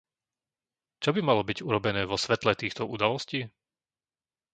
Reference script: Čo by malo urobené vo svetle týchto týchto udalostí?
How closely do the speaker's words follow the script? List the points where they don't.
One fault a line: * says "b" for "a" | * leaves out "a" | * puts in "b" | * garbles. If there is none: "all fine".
* puts in "byť"
* leaves out "týchto"